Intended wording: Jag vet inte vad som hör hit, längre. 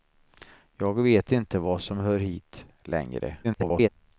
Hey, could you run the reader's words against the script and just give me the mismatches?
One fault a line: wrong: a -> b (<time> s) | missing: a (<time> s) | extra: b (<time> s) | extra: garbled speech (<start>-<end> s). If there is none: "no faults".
extra: garbled speech (3.4-3.9 s)